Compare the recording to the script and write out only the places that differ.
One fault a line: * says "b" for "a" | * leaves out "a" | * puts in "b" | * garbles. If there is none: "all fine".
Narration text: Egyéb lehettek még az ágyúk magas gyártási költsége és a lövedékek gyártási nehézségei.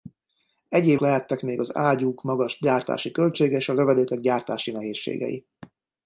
all fine